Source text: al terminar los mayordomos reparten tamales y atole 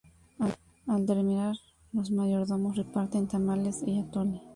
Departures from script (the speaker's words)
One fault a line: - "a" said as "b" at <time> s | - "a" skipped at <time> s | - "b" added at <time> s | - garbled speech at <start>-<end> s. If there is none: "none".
none